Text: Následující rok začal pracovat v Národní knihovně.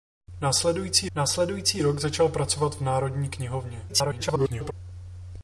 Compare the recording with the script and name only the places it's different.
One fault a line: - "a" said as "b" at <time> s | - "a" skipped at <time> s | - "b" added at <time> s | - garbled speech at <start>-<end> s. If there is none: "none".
- "následující" added at 1.2 s
- garbled speech at 3.9-4.7 s